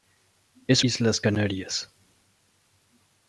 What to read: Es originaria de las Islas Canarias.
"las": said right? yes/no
no